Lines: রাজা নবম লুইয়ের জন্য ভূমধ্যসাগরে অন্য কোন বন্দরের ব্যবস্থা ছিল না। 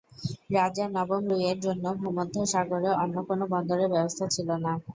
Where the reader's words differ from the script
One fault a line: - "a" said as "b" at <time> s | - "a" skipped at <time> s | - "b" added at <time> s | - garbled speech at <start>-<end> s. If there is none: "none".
none